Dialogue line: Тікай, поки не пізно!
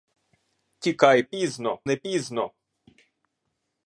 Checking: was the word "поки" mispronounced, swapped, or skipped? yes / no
yes